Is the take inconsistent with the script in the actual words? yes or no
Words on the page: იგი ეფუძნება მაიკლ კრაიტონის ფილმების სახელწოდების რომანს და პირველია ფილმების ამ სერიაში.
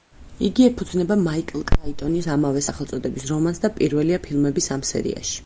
yes